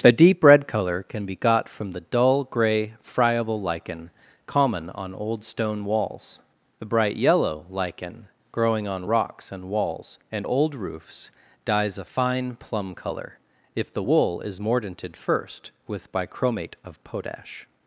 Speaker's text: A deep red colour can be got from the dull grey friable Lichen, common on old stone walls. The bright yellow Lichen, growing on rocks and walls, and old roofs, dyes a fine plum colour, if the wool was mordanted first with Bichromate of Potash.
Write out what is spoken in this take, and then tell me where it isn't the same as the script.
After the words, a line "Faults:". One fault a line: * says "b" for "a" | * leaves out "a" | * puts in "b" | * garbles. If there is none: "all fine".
A deep red colour can be got from the dull grey friable Lichen, common on old stone walls. The bright yellow Lichen, growing on rocks and walls, and old roofs, dyes a fine plum colour, if the wool is mordanted first with Bichromate of Potash.
Faults:
* says "is" for "was"